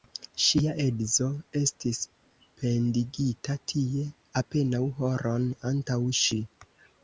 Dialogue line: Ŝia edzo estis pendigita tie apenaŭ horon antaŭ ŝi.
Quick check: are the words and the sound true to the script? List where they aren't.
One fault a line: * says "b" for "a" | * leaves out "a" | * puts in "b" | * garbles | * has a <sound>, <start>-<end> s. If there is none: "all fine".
all fine